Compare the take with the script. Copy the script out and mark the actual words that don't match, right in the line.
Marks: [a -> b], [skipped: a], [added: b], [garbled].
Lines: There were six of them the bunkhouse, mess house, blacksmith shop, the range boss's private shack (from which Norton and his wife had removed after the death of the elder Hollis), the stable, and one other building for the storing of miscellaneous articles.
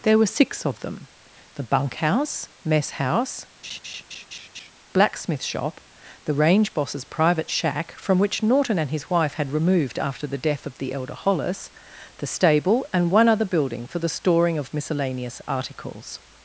There were six of them the bunkhouse, mess house, blacksmith shop, the range boss's private shack (from which Norton and his wife had removed after the death of the elder Hollis), the stable, and one other building for the storing of miscellaneous articles.